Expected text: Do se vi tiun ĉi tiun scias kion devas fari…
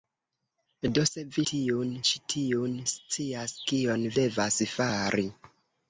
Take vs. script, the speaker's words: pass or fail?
pass